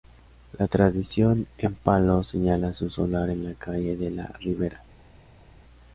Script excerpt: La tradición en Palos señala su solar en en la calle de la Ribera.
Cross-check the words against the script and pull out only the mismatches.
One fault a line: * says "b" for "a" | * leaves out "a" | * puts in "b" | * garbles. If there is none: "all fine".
* leaves out "en"